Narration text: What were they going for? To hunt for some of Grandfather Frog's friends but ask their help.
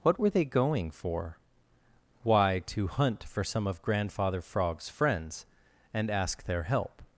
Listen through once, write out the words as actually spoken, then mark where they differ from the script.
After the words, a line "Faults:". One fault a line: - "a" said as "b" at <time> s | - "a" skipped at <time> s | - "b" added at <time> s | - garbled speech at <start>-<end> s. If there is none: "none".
What were they going for? Why, to hunt for some of Grandfather Frog's friends and ask their help.
Faults:
- "Why" added at 2.2 s
- "but" said as "and" at 5.9 s